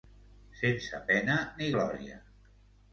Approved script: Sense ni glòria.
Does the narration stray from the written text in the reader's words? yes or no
yes